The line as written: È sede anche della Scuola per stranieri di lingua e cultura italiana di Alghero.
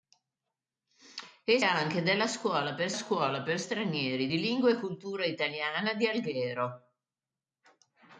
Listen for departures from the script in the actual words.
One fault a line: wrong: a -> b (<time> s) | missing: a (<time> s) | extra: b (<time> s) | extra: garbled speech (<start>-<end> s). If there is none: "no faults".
missing: sede (1.6 s)
extra: Scuola per (2.9 s)